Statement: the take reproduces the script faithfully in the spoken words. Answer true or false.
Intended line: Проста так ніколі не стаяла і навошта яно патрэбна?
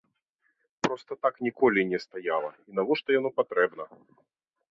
true